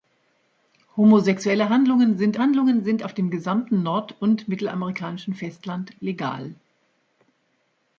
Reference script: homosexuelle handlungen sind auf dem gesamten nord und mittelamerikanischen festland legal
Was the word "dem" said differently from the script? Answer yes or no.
no